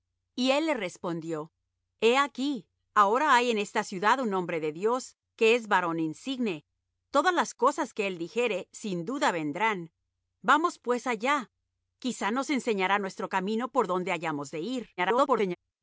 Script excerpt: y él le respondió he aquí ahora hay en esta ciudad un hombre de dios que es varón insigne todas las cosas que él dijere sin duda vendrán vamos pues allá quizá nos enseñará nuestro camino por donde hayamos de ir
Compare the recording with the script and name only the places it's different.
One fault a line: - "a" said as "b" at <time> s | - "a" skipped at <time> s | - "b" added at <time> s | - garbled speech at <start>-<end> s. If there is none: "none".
- garbled speech at 15.0-15.6 s